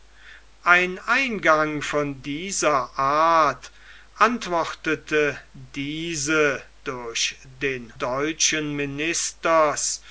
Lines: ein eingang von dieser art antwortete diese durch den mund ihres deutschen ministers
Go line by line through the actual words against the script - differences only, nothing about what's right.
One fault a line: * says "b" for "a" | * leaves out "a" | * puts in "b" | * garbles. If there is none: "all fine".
* leaves out "mund ihres"